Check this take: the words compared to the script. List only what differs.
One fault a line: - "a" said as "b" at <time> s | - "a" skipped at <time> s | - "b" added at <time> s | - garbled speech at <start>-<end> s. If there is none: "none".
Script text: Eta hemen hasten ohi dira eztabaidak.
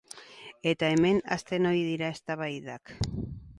none